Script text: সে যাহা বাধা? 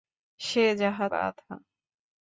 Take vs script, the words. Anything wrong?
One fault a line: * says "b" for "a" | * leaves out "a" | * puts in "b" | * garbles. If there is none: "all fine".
all fine